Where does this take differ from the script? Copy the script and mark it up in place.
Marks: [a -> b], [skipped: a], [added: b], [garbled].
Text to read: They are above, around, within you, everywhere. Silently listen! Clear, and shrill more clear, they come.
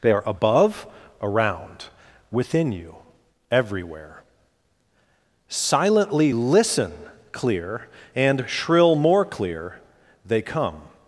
They are above, around, within you, everywhere. Silently listen! Clear, and shrill more clear, they come.